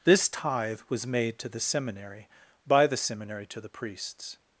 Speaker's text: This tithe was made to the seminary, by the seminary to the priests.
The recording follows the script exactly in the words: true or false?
true